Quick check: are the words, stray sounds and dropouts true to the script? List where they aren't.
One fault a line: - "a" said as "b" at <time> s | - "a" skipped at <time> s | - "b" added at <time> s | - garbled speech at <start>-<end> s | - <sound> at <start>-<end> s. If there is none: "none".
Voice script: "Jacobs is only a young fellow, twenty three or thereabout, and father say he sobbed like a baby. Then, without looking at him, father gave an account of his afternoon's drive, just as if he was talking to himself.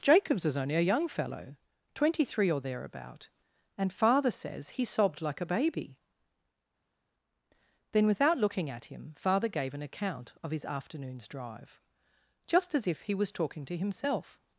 - "say" said as "says" at 4.3 s